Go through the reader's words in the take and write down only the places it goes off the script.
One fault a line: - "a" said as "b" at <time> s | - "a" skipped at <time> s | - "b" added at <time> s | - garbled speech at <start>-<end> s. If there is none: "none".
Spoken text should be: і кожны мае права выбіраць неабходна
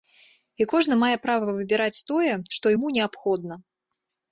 - "тое што яму" added at 2.1 s